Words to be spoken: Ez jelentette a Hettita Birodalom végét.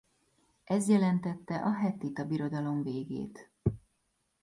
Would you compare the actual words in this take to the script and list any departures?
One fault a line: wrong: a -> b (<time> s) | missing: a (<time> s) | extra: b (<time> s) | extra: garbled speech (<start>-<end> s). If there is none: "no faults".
no faults